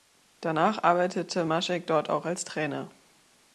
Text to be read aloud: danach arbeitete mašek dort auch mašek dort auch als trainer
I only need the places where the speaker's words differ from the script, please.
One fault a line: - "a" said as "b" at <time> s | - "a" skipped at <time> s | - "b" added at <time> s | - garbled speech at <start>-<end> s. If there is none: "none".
- "mašek dort auch" skipped at 2.3 s